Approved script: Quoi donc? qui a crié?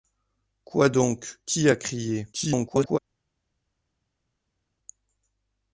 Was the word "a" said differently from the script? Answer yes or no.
no